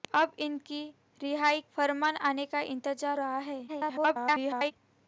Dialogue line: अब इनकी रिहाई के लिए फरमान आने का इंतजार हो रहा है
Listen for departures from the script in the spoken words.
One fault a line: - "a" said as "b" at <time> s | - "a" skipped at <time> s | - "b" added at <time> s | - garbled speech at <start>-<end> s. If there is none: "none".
- "के लिए" skipped at 1.6 s
- "हो" skipped at 3.2 s
- garbled speech at 3.7-4.7 s